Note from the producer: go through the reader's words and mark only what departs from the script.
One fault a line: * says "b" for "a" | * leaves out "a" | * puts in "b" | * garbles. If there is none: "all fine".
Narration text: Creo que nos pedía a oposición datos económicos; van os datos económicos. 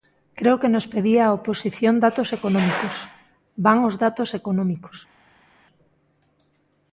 all fine